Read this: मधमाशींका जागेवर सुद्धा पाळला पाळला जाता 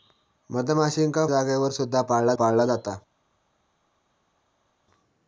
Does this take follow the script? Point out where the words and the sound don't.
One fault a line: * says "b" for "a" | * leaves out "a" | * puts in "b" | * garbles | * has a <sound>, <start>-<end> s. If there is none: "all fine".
all fine